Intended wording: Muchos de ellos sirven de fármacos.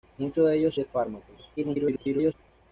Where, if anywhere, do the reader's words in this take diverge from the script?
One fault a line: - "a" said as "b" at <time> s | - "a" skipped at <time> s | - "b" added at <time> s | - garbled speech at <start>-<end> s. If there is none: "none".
- "sirven" skipped at 0.8 s
- garbled speech at 1.6-2.3 s